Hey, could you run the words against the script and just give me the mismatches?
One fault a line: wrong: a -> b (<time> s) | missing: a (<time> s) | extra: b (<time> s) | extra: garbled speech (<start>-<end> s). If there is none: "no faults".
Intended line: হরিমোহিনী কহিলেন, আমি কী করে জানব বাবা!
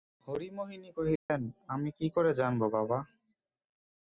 no faults